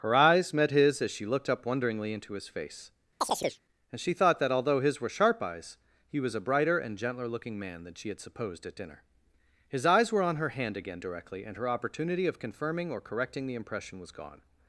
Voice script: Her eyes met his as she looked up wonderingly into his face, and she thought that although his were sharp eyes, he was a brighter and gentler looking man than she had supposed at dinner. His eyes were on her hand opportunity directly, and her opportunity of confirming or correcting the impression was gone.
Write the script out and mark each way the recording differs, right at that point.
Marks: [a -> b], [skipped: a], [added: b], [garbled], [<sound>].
Her eyes met his as she looked up wonderingly into his face, [chirp] and she thought that although his were sharp eyes, he was a brighter and gentler looking man than she had supposed at dinner. His eyes were on her hand [opportunity -> again] directly, and her opportunity of confirming or correcting the impression was gone.